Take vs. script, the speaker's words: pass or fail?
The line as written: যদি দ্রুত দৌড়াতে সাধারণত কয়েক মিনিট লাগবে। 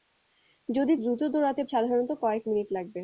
pass